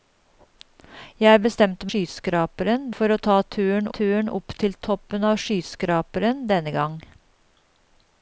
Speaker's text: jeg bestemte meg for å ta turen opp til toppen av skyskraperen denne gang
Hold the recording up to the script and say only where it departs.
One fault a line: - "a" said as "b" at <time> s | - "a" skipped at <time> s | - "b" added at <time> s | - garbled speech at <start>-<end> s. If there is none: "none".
- "meg" said as "skyskraperen" at 1.9 s
- "turen" added at 4.0 s